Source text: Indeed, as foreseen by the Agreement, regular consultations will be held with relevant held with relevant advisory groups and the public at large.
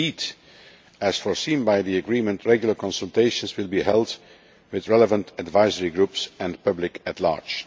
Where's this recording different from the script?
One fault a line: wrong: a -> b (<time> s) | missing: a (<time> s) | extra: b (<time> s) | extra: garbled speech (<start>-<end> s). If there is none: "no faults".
missing: held with relevant (5.3 s)